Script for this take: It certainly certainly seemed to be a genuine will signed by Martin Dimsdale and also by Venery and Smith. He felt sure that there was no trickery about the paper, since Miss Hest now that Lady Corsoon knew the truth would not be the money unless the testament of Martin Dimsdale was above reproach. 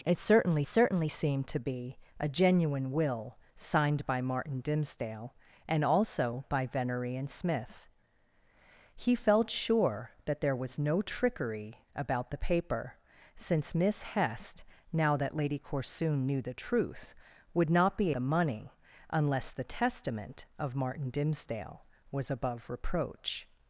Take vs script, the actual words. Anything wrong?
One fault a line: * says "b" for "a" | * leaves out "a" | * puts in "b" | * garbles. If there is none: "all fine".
all fine